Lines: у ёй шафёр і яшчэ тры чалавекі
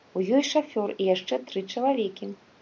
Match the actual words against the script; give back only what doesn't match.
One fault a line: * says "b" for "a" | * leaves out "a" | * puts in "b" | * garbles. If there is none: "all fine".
all fine